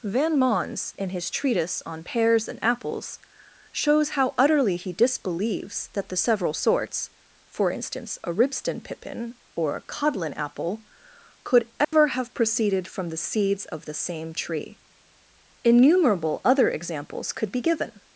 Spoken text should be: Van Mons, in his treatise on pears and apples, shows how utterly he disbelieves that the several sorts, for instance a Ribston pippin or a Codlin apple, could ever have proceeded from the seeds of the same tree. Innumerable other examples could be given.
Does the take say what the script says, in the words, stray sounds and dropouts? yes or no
no